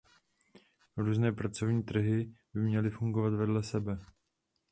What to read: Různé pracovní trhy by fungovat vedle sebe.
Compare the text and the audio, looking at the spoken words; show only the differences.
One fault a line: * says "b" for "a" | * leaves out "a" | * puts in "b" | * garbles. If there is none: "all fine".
* puts in "měly"